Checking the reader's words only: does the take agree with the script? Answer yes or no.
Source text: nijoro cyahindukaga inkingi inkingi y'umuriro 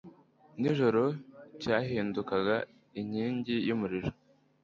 no